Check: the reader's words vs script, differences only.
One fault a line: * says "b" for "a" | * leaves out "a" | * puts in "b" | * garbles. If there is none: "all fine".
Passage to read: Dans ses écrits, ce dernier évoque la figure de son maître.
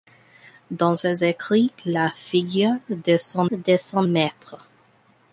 * says "la figure de son" for "ce dernier évoque la figure"